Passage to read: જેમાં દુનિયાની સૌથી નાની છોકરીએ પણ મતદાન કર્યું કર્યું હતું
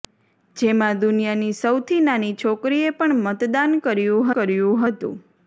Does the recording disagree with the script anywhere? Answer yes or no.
no